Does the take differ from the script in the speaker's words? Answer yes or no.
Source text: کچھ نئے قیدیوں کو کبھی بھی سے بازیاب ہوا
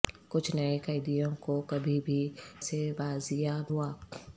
no